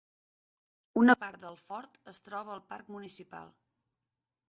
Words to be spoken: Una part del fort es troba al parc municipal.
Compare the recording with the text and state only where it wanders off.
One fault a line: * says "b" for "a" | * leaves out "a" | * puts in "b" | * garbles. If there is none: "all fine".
all fine